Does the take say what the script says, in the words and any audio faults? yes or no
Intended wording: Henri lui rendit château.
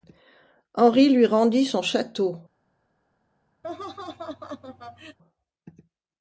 no